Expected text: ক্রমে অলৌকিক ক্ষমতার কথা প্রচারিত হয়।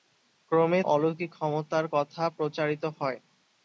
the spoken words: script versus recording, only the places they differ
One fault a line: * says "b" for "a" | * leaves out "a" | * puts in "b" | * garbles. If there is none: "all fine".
all fine